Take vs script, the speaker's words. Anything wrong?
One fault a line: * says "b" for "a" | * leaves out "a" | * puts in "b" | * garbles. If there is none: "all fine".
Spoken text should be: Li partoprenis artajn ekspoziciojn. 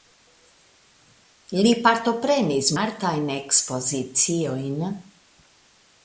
all fine